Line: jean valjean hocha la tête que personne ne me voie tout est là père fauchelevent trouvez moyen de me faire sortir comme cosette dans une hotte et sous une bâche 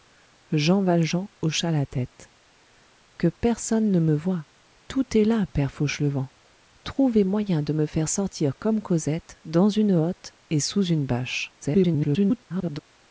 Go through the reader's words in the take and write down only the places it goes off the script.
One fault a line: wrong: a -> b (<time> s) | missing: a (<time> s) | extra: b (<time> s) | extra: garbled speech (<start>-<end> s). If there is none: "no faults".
extra: garbled speech (11.6-12.8 s)